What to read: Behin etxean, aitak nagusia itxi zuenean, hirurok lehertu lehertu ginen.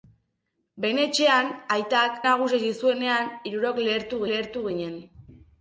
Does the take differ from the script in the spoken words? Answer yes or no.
no